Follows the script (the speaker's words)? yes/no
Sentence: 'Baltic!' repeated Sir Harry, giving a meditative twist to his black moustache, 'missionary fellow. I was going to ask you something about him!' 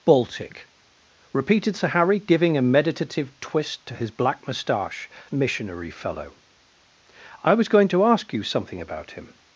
yes